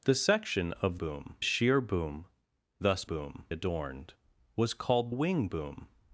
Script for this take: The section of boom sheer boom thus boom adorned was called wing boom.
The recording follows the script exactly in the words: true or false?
true